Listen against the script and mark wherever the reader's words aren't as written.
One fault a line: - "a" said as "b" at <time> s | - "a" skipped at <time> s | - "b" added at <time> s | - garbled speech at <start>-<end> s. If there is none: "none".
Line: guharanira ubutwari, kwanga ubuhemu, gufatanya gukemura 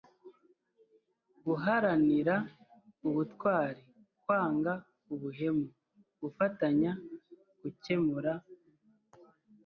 none